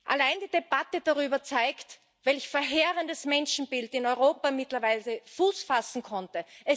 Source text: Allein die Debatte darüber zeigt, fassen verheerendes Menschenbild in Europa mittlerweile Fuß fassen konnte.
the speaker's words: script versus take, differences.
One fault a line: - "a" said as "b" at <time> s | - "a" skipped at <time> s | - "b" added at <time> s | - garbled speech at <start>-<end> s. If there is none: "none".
- "fassen" said as "welch" at 2.2 s